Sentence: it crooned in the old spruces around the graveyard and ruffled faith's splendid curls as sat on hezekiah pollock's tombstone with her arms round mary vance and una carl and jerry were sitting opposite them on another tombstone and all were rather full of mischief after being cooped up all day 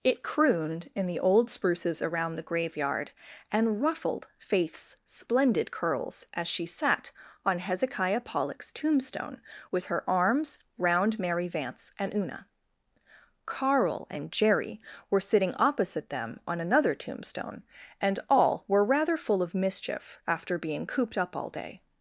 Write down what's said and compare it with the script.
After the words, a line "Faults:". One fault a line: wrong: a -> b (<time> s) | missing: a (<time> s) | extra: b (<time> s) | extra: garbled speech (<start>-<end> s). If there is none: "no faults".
it crooned in the old spruces around the graveyard and ruffled faith's splendid curls as she sat on hezekiah pollock's tombstone with her arms round mary vance and una carl and jerry were sitting opposite them on another tombstone and all were rather full of mischief after being cooped up all day
Faults:
extra: she (6.5 s)